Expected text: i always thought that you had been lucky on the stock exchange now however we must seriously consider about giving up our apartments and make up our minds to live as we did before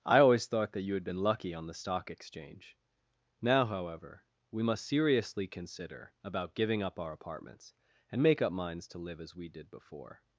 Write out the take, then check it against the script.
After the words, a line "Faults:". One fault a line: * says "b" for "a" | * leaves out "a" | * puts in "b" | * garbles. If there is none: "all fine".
i always thought that you had been lucky on the stock exchange now however we must seriously consider about giving up our apartments and make up minds to live as we did before
Faults:
* leaves out "our"